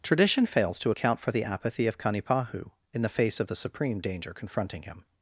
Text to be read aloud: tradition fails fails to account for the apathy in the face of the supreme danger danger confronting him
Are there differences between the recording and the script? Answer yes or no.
yes